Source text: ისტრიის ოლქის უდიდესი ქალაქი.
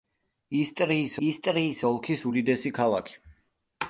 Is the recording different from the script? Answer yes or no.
yes